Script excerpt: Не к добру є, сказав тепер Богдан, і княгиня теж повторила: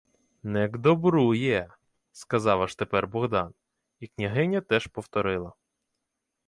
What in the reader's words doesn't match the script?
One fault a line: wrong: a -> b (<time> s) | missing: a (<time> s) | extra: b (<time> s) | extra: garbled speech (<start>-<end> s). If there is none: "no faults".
extra: аж (2.6 s)